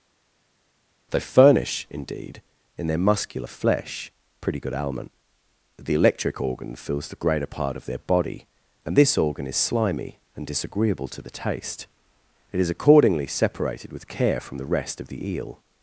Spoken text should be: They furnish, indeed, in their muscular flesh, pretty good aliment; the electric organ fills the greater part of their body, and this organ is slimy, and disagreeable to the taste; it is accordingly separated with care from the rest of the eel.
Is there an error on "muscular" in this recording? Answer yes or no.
no